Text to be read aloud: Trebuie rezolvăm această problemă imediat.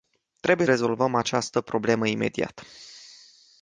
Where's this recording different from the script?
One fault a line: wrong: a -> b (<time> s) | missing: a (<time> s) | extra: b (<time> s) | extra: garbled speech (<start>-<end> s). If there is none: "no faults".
no faults